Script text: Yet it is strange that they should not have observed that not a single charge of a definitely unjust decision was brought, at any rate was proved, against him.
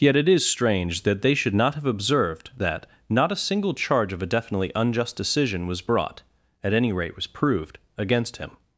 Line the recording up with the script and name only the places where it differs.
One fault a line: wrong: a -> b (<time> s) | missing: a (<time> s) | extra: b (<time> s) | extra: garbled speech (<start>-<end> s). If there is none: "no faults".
no faults